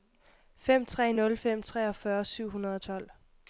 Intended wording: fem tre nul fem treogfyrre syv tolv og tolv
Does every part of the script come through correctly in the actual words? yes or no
no